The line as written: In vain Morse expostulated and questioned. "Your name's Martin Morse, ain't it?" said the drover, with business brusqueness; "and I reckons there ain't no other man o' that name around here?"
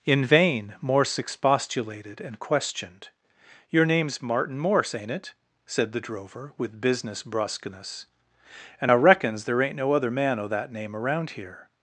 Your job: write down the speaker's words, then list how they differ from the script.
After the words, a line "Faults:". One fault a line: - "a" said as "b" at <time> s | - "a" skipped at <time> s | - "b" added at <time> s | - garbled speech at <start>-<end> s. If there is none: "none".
In vain Morse expostulated and questioned. "Your name's Martin Morse, ain't it?" said the drover, with business brusqueness; "and I reckons there ain't no other man o' that name around here?"
Faults:
none